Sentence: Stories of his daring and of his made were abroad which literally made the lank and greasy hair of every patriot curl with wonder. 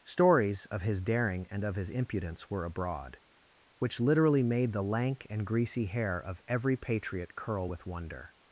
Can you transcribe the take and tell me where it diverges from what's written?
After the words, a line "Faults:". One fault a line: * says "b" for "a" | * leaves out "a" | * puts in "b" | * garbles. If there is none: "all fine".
Stories of his daring and of his impudence were abroad which literally made the lank and greasy hair of every patriot curl with wonder.
Faults:
* says "impudence" for "made"